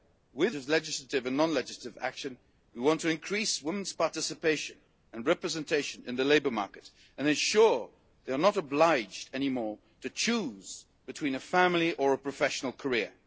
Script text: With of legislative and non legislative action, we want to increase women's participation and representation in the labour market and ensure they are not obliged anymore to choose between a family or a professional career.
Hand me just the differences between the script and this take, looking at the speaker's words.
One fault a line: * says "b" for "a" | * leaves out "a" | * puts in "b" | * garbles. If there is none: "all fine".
all fine